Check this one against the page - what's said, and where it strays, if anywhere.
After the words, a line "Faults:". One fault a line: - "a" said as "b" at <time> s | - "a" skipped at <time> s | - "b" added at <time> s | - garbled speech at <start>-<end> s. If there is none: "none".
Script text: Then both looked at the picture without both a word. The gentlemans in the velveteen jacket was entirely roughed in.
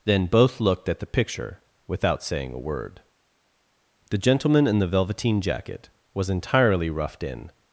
Then both looked at the picture without saying a word. The gentleman in the velveteen jacket was entirely roughed in.
Faults:
- "both" said as "saying" at 2.2 s
- "gentlemans" said as "gentleman" at 4.1 s